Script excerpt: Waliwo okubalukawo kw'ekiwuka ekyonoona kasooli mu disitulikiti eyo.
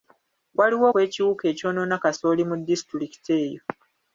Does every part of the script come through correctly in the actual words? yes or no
no